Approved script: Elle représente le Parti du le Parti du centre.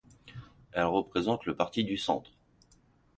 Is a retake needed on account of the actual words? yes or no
yes